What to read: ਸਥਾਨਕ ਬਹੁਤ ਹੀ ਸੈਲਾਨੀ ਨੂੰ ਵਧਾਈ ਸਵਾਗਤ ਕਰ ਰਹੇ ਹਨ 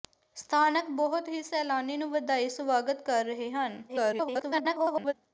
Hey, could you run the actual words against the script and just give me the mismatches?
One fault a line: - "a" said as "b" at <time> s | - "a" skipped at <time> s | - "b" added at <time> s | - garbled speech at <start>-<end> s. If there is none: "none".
- garbled speech at 3.9-5.1 s